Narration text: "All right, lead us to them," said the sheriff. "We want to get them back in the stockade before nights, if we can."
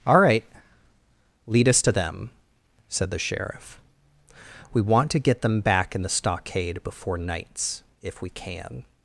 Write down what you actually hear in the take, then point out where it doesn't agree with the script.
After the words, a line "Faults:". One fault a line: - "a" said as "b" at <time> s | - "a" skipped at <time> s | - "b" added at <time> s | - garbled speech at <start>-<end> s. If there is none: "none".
"All right, lead us to them," said the sheriff. "We want to get them back in the stockade before nights, if we can."
Faults:
none